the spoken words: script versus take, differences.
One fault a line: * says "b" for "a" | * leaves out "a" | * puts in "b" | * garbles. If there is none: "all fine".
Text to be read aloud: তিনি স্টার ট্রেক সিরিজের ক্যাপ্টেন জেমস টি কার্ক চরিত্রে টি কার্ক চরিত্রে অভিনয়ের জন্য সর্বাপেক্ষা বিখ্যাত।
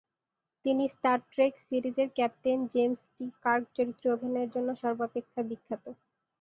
* leaves out "টি কার্ক চরিত্রে"